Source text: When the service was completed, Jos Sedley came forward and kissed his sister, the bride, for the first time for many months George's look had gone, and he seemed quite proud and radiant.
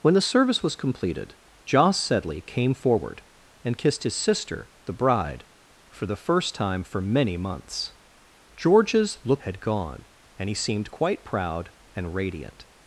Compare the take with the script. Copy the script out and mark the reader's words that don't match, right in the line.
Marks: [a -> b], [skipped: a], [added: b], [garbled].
When the service was completed, Jos Sedley came forward and kissed his sister, the bride, for the first time for many months George's look had gone, and he seemed quite proud and radiant.